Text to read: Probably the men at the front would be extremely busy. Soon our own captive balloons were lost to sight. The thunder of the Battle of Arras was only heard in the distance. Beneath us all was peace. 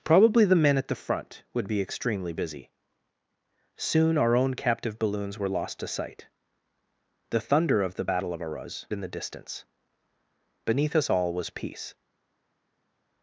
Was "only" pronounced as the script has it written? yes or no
no